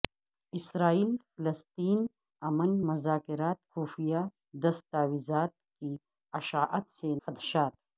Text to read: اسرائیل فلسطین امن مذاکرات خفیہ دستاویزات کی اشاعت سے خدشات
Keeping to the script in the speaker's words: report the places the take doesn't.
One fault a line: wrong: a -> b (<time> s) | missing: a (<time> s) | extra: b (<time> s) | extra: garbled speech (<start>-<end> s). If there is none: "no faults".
no faults